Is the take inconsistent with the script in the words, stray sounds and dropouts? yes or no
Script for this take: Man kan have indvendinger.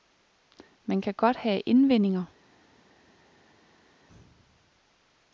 yes